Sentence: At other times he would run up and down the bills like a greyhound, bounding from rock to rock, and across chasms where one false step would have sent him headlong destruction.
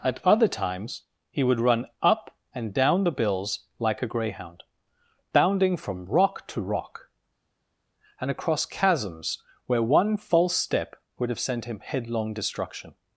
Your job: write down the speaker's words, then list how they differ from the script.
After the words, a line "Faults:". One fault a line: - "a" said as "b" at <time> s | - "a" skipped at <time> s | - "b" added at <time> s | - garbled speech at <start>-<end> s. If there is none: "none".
At other times he would run up and down the bills like a greyhound, bounding from rock to rock, and across chasms where one false step would have sent him headlong destruction.
Faults:
none